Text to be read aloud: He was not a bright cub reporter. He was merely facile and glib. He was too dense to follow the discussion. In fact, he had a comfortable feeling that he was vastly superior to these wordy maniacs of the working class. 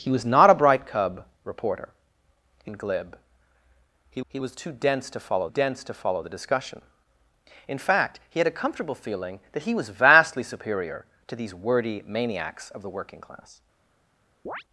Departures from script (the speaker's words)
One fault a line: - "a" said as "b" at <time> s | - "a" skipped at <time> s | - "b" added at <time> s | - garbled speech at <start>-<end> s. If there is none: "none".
- "was merely facile" skipped at 2.7 s
- "he" added at 4.3 s
- "dense to follow" added at 5.5 s